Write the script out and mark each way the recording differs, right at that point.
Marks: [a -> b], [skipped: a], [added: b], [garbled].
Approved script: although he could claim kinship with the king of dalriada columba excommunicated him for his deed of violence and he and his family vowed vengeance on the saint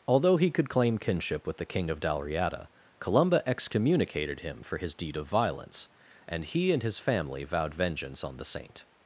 although he could claim kinship with the king of dalriada columba excommunicated him for his deed of violence and he and his family vowed vengeance on the saint